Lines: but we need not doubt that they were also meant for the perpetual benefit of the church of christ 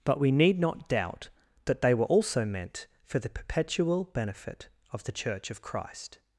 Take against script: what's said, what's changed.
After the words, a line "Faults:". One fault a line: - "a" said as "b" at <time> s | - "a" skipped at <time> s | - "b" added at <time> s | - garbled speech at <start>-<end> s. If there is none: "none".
but we need not doubt that they were also meant for the perpetual benefit of the church of christ
Faults:
none